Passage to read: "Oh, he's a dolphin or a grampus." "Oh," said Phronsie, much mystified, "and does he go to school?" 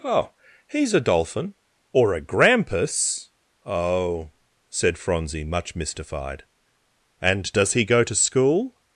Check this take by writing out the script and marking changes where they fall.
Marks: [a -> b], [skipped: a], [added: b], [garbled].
"Oh, he's a dolphin or a grampus." "Oh," said Phronsie, much mystified, "and does he go to school?"